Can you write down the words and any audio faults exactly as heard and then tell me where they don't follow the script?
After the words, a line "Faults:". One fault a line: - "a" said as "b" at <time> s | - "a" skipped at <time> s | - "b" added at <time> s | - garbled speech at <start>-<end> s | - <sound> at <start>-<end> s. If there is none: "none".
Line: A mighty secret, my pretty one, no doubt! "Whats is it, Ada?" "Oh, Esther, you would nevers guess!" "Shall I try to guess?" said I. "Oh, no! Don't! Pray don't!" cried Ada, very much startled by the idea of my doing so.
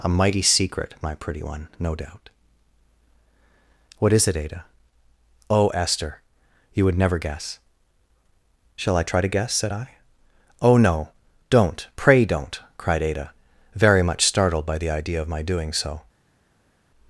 A mighty secret, my pretty one, no doubt! "What is it, Ada?" "Oh, Esther, you would never guess!" "Shall I try to guess?" said I. "Oh, no! Don't! Pray don't!" cried Ada, very much startled by the idea of my doing so.
Faults:
- "Whats" said as "What" at 4.0 s
- "nevers" said as "never" at 7.0 s